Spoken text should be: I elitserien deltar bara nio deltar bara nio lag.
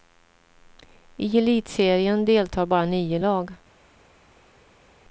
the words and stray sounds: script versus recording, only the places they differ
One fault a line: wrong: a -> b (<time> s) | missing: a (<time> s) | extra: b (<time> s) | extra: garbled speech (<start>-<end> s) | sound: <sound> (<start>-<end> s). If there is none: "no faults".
missing: deltar bara nio (3.2 s)